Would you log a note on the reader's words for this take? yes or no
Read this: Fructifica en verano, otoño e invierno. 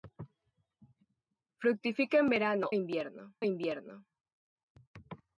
yes